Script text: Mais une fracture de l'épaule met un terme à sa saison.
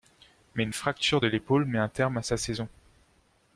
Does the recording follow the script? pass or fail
pass